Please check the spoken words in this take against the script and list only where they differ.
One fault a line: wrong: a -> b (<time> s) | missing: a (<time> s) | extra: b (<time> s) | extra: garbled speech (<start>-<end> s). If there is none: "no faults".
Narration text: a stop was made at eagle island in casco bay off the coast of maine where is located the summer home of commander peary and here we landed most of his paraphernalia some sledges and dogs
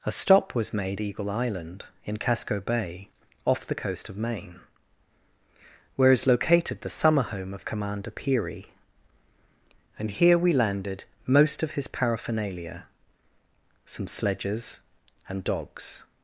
missing: at (1.0 s)